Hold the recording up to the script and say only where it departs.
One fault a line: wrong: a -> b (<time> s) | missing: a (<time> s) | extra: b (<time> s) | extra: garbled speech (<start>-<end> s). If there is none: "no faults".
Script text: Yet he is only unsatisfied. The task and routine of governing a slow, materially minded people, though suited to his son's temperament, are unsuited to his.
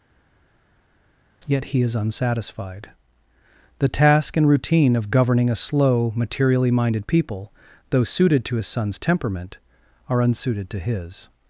missing: only (1.9 s)